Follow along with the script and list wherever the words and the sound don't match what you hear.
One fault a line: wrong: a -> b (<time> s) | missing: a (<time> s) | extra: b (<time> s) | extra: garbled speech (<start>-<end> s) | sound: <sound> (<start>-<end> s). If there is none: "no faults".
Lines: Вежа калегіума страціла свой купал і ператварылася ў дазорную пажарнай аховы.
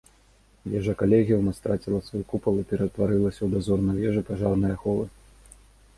extra: вежу (4.0 s)